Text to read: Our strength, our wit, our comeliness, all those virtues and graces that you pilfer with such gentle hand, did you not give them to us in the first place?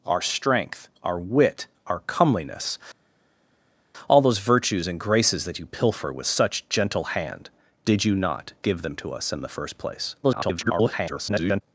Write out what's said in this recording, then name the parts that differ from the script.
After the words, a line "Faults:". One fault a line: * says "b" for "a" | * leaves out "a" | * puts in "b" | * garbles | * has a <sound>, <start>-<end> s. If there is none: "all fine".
Our strength, our wit, our comeliness, all those virtues and graces that you pilfer with such gentle hand, did you not give them to us in the first place? [garbled]
Faults:
* garbles